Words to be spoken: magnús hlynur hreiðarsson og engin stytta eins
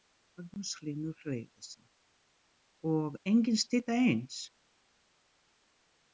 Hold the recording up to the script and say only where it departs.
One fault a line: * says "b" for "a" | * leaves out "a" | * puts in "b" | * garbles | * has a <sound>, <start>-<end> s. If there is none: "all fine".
all fine